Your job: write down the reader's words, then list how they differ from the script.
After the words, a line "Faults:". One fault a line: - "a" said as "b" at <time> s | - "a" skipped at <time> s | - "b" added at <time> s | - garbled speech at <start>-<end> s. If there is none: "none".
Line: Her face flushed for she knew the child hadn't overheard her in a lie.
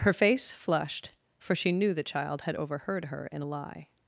Her face flushed for she knew the child had overheard her in a lie.
Faults:
- "hadn't" said as "had" at 2.4 s